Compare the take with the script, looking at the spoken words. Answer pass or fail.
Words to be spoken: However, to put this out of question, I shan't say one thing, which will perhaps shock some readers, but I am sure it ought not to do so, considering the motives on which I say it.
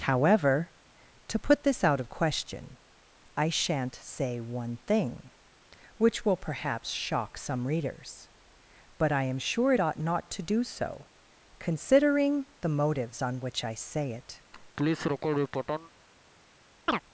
pass